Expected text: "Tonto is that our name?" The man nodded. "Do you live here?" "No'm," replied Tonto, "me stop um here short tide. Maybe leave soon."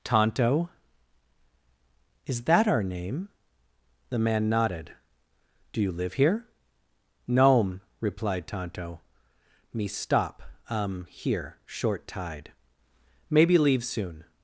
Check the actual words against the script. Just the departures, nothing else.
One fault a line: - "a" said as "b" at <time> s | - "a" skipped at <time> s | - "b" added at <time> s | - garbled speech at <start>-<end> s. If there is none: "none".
none